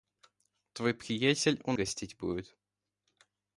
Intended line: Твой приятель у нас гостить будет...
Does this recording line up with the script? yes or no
no